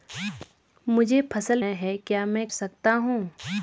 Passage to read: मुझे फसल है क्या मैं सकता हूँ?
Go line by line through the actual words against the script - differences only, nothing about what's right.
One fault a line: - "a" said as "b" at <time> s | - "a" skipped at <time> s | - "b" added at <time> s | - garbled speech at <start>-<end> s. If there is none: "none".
none